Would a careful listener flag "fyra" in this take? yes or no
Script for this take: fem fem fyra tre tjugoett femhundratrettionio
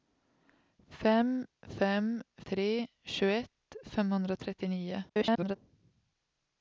yes